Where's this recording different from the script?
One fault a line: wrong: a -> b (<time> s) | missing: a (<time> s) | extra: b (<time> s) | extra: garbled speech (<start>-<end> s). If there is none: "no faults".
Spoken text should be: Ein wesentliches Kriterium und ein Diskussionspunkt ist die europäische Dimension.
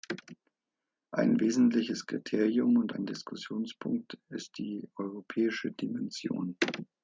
no faults